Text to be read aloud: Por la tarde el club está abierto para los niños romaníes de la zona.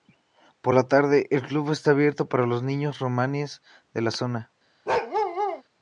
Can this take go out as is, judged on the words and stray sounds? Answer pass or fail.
fail